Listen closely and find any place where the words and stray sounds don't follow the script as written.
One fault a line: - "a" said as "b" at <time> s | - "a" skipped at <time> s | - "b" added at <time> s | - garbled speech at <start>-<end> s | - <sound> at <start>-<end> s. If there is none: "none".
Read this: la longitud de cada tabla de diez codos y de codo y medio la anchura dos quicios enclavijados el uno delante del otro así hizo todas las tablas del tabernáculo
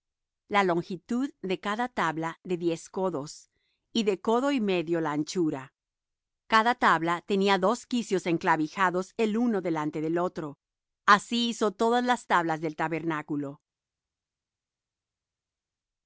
- "cada tabla tenía" added at 6.5 s